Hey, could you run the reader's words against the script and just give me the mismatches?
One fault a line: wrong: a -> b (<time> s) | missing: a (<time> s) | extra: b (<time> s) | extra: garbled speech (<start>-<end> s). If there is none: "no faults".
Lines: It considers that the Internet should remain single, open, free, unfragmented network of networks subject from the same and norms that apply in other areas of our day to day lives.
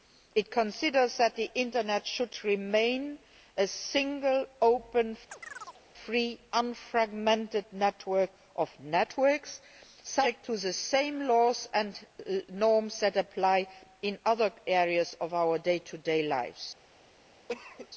extra: a (3.6 s)
wrong: from -> to (10.4 s)
extra: laws (11.3 s)